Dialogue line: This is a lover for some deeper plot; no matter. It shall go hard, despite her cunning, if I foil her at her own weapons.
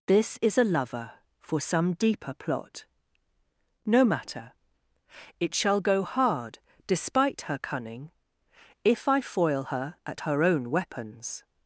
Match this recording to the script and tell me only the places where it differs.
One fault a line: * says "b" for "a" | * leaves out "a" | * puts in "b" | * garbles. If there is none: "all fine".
all fine